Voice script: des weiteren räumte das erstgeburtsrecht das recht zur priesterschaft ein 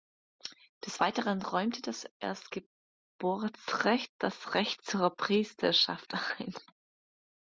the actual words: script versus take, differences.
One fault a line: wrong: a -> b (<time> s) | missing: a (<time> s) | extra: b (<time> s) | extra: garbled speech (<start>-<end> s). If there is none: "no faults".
no faults